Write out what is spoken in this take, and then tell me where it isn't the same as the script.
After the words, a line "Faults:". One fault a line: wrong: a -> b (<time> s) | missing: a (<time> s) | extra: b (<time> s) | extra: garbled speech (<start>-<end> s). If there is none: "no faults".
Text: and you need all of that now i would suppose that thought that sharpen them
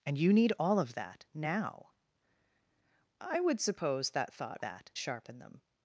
and you need all of that now i would suppose that thought that sharpen them
Faults:
no faults